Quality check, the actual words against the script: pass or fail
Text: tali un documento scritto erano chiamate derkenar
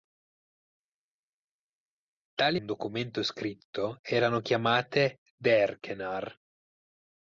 pass